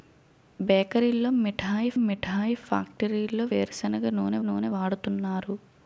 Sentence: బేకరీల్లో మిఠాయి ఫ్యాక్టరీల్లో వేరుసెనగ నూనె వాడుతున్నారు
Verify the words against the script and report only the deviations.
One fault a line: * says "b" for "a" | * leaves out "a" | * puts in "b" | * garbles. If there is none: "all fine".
* puts in "మిఠాయి"
* puts in "నూనె"